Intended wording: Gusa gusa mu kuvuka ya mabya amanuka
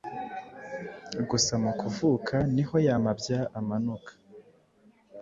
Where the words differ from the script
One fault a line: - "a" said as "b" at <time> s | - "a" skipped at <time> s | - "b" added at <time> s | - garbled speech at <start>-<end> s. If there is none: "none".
- "gusa" skipped at 1.5 s
- "niho" added at 2.5 s